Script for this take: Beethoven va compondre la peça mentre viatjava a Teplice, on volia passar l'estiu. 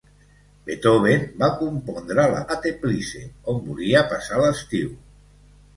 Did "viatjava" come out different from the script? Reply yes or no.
yes